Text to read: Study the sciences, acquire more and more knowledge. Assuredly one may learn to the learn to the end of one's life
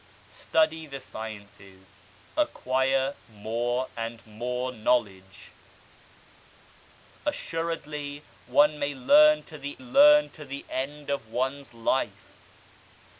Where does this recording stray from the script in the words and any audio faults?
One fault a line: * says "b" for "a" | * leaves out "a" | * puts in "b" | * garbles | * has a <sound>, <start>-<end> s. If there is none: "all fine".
all fine